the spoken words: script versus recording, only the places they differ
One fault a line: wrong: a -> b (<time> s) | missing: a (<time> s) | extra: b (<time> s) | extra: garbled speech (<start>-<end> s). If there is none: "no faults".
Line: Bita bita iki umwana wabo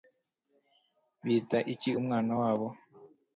missing: bita (1.6 s)